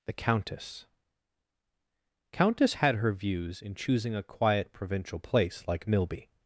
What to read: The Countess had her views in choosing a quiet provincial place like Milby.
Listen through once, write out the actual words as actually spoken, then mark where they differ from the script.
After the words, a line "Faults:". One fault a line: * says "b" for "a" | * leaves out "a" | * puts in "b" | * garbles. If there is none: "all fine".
The Countess Countess had her views in choosing a quiet provincial place like Milby.
Faults:
* puts in "Countess"